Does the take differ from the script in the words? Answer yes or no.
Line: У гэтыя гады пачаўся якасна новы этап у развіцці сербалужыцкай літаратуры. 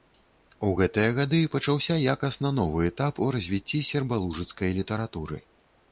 no